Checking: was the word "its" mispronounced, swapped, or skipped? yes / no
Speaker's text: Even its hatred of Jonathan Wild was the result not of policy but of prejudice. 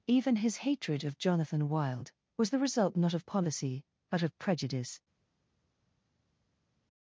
yes